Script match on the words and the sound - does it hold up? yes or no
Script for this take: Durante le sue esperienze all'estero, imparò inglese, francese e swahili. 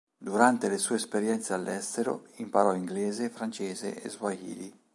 yes